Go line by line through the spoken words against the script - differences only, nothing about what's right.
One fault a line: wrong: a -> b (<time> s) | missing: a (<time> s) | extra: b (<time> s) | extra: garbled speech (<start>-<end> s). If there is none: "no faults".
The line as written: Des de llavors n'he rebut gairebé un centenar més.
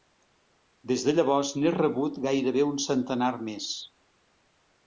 no faults